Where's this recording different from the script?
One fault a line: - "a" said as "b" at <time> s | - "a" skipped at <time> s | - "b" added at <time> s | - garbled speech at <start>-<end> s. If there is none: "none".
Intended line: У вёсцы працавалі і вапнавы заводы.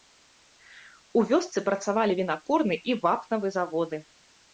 - "вінакурны" added at 2.2 s